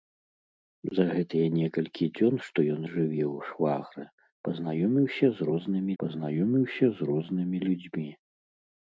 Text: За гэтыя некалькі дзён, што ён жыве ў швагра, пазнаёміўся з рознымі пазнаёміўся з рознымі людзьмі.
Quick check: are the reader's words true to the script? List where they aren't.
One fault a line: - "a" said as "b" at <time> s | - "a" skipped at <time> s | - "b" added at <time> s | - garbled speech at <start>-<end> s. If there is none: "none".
none